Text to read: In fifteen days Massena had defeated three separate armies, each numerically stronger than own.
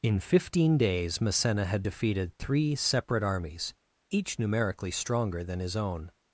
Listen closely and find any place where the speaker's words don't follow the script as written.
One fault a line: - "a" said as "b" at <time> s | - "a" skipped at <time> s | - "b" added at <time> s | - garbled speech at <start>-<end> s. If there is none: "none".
- "his" added at 5.6 s